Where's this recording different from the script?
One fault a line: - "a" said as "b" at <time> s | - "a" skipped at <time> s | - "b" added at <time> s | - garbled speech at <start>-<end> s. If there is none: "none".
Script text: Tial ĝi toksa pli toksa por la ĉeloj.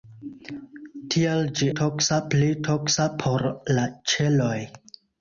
none